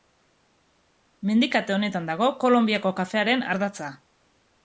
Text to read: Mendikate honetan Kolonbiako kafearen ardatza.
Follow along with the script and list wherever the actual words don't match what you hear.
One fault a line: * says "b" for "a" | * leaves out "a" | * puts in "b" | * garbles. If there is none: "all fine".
* puts in "dago"